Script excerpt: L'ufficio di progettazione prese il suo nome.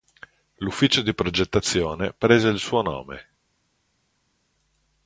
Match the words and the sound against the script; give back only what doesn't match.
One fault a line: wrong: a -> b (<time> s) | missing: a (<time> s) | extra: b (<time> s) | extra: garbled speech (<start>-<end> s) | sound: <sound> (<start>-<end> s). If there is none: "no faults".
no faults